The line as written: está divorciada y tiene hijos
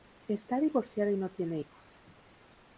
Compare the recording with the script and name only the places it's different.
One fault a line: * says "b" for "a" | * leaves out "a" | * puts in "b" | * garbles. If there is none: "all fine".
* puts in "no"